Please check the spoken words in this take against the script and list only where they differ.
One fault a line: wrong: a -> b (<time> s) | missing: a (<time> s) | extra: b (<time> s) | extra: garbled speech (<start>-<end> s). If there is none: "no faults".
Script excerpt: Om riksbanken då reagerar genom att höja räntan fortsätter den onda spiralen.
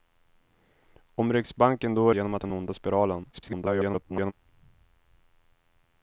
missing: reagerar (2.1 s)
missing: höja räntan fortsätter (2.4 s)
extra: garbled speech (3.3-4.3 s)